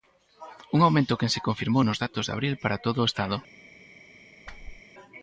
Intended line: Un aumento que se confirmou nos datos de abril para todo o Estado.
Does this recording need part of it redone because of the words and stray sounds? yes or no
yes